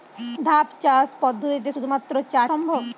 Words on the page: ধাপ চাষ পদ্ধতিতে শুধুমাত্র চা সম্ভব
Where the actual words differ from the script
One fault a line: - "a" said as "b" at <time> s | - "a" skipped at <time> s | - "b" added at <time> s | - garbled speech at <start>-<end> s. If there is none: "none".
none